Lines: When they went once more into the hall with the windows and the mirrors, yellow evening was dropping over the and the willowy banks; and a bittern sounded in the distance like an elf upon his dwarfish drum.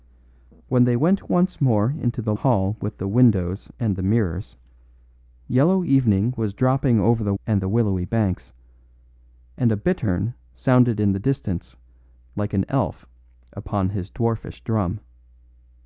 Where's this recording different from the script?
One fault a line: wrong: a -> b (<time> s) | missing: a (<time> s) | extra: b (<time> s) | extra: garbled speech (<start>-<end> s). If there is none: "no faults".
no faults